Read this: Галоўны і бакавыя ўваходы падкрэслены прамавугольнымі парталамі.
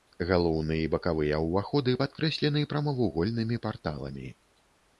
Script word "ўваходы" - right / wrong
right